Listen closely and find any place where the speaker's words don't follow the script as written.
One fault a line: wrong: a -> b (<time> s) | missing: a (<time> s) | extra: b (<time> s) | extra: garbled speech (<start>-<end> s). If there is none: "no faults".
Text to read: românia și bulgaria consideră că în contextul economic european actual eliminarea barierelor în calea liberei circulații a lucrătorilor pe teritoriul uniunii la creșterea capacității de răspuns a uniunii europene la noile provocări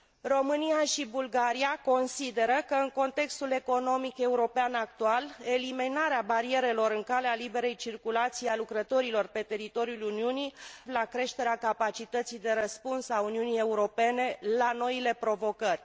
no faults